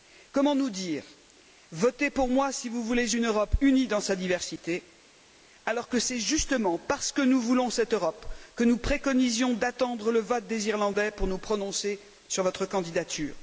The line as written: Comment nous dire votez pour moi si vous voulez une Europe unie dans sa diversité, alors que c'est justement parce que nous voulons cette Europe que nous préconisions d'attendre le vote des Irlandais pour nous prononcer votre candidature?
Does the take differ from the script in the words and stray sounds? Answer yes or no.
yes